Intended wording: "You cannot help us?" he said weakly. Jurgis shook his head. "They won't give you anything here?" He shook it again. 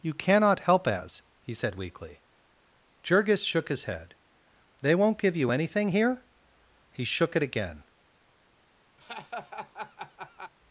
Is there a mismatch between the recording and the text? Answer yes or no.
yes